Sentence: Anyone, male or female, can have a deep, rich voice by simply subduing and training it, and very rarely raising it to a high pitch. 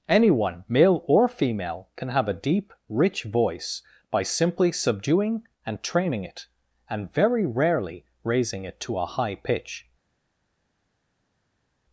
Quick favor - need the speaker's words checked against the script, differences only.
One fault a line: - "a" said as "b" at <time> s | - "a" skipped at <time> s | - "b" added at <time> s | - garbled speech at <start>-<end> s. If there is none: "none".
none